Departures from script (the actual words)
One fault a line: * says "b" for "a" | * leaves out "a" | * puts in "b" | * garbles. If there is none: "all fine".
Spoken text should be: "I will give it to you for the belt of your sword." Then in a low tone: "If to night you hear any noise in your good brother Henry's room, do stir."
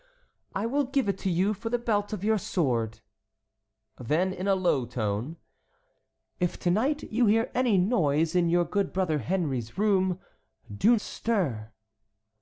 all fine